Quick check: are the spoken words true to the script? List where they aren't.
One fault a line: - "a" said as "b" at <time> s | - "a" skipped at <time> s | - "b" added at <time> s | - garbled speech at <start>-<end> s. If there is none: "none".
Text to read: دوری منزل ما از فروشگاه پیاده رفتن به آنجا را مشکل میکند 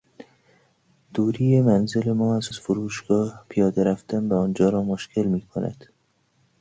- "از" added at 2.5 s